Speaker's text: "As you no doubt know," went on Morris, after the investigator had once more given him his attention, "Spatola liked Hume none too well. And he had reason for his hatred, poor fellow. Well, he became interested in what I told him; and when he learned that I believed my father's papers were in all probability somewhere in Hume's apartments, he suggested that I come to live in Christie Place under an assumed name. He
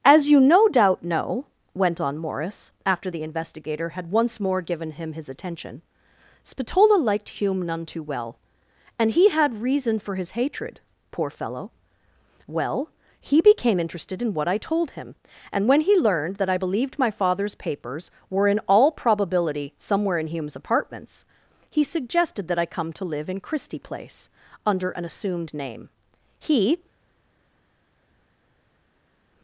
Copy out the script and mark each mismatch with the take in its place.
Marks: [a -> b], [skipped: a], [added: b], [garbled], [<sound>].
"As you no doubt know," went on Morris, after the investigator had once more given him his attention, "Spatola liked Hume none too well. And he had reason for his hatred, poor fellow. Well, he became interested in what I told him; and when he learned that I believed my father's papers were in all probability somewhere in Hume's apartments, he suggested that I come to live in Christie Place under an assumed name. He